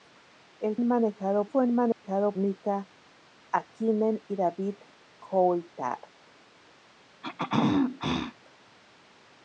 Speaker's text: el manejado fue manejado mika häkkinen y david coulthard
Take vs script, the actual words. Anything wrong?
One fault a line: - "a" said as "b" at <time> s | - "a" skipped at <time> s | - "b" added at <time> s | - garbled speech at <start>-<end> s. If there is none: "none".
none